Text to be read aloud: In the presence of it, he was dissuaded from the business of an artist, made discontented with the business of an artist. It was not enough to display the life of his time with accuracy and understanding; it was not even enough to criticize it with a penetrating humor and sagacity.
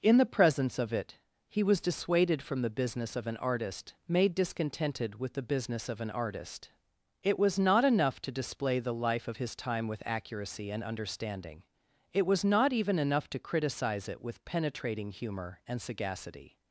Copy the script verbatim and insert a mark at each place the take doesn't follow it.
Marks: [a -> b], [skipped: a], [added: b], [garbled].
In the presence of it, he was dissuaded from the business of an artist, made discontented with the business of an artist. It was not enough to display the life of his time with accuracy and understanding; it was not even enough to criticize it with [skipped: a] penetrating humor and sagacity.